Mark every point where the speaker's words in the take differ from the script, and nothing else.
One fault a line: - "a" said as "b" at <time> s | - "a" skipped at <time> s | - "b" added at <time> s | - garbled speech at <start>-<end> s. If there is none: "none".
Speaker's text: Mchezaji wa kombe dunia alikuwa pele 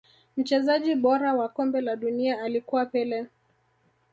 - "bora" added at 0.9 s
- "la" added at 1.8 s